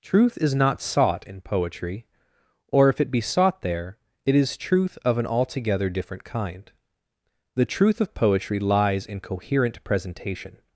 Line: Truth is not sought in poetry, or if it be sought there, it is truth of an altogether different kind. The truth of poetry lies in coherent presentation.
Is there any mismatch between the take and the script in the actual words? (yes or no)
no